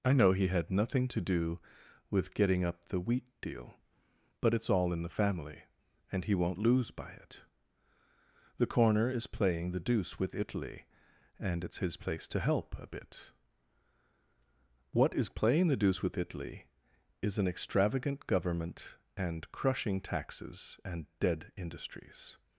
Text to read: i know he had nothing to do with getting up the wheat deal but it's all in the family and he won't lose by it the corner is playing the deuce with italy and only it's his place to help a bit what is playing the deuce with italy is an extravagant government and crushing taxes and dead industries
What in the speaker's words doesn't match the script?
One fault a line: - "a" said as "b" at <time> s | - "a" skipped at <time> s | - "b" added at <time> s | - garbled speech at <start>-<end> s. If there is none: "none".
- "only" skipped at 11.7 s